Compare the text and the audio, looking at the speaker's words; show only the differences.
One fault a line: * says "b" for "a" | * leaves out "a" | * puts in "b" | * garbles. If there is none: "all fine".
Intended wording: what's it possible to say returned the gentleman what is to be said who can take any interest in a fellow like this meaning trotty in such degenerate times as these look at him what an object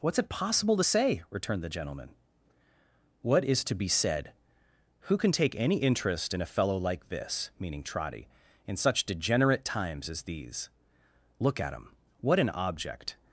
all fine